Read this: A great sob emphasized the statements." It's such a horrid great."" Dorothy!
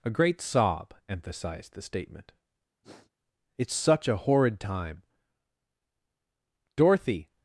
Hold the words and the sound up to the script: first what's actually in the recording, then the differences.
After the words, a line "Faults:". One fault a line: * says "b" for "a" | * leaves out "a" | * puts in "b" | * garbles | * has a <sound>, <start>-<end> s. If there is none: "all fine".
A great sob emphasized the statement." It's such a horrid time."" Dorothy!
Faults:
* says "statement" for "statements"
* has a sniff, 2.8-3.1 s
* says "time" for "great"